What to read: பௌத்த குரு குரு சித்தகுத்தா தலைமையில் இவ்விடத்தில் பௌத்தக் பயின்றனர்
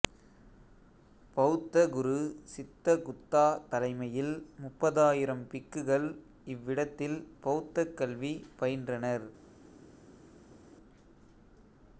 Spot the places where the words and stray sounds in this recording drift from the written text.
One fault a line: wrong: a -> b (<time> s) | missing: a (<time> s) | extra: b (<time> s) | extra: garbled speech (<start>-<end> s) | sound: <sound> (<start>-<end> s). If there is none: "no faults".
missing: குரு (2.1 s)
extra: முப்பதாயிரம் பிக்குகள் (4.6 s)
extra: கல்வி (7.9 s)